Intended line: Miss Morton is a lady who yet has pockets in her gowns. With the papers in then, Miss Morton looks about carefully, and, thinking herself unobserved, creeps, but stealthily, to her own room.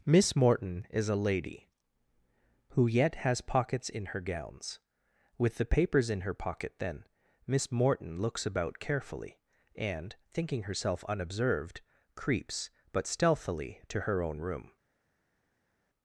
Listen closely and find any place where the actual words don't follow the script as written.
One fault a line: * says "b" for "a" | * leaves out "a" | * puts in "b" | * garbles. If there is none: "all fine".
* puts in "her pocket"